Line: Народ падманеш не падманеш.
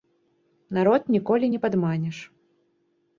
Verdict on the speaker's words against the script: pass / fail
fail